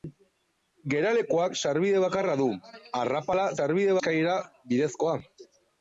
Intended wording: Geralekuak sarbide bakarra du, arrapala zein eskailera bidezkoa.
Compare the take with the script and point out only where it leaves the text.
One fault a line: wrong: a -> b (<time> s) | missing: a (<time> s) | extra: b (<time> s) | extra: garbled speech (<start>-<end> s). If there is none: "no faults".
wrong: zein -> sarbide (3.5 s)